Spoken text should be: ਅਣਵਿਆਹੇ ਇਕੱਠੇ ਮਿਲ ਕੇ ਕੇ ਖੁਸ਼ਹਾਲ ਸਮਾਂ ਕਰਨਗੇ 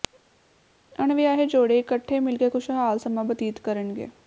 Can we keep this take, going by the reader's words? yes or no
no